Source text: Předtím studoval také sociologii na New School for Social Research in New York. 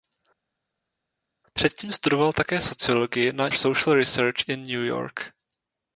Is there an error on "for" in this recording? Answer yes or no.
yes